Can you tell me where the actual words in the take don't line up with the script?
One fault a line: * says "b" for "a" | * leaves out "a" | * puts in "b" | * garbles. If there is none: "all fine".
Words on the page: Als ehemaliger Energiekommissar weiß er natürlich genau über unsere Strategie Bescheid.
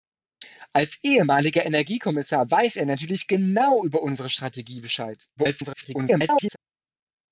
* garbles